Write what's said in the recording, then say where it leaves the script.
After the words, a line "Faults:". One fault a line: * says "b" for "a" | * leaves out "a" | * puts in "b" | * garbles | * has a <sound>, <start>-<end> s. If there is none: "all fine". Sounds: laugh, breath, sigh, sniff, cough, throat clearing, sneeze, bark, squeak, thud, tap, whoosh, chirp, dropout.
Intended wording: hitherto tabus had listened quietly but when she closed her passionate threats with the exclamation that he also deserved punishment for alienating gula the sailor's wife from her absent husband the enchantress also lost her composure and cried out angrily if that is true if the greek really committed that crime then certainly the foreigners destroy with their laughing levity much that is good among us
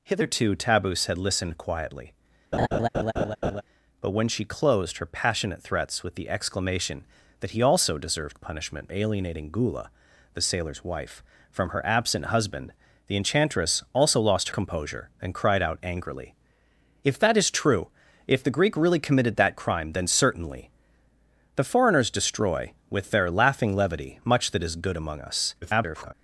hitherto tabus had listened quietly but when she closed her passionate threats with the exclamation that he also deserved punishment alienating gula the sailor's wife from her absent husband the enchantress also lost composure and cried out angrily if that is true if the greek really committed that crime then certainly the foreigners destroy with their laughing levity much that is good among us [garbled]
Faults:
* has a laugh, 2.5-3.6 s
* leaves out "for"
* leaves out "her"
* garbles